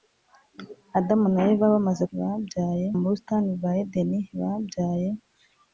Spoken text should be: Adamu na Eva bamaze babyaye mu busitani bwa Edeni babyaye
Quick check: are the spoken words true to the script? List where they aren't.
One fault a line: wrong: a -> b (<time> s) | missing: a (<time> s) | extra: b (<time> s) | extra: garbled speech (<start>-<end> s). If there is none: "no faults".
no faults